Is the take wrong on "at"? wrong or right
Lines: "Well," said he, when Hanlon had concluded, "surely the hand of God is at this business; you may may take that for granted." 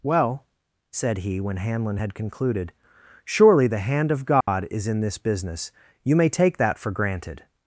wrong